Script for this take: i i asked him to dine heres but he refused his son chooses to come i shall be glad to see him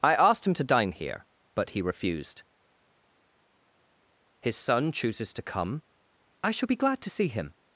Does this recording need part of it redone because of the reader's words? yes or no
yes